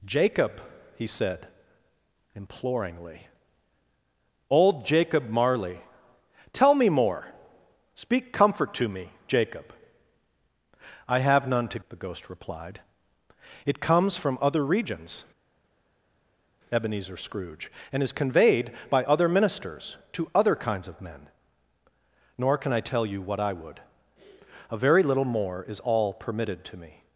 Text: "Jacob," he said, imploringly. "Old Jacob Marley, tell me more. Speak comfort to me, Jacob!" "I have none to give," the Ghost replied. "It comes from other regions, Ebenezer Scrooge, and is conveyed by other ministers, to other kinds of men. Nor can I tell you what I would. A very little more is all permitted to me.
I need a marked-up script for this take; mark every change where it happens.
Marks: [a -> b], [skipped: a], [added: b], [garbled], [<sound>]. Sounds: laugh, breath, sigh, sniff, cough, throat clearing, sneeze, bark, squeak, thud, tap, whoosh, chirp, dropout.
"Jacob," he said, imploringly. "Old Jacob Marley, tell me more. Speak comfort to me, Jacob!" "I have none to [skipped: give,"] the Ghost replied. "It comes from other regions, Ebenezer Scrooge, and is conveyed by other ministers, to other kinds of men. Nor can I tell you what I would. A very little more is all permitted to me.